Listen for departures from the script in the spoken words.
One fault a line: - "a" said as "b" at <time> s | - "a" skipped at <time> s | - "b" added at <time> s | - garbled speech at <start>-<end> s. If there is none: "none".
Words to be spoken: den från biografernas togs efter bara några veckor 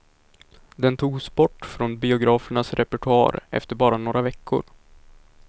- "togs bort" added at 1.0 s
- "togs" said as "repertoar" at 2.7 s